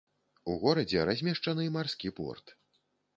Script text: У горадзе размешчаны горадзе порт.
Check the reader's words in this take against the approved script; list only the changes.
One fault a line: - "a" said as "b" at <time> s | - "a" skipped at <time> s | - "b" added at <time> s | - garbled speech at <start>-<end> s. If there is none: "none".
- "горадзе" said as "марскі" at 1.8 s